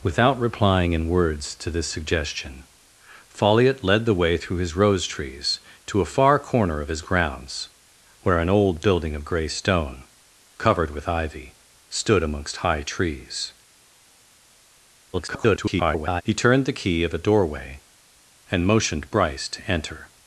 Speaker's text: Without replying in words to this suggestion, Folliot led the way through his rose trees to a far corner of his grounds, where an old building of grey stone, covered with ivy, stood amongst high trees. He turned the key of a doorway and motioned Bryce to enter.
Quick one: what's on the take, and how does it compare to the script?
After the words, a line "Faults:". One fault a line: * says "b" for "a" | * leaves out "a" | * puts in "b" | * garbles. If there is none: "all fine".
Without replying in words to this suggestion, Folliot led the way through his rose trees to a far corner of his grounds, where an old building of grey stone, covered with ivy, stood amongst high trees. [garbled] He turned the key of a doorway and motioned Bryce to enter.
Faults:
* garbles